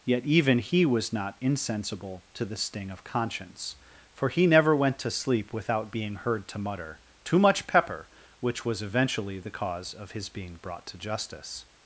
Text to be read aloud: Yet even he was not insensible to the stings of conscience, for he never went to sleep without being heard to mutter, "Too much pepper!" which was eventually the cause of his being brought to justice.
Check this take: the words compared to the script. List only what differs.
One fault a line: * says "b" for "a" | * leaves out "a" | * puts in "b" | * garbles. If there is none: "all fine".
* says "sting" for "stings"